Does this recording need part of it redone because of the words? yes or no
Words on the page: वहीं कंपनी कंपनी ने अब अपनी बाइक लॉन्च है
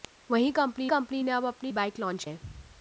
no